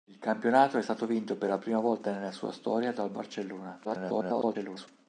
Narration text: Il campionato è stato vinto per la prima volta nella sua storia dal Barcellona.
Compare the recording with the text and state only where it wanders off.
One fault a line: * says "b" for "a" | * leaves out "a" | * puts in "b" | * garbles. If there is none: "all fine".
* garbles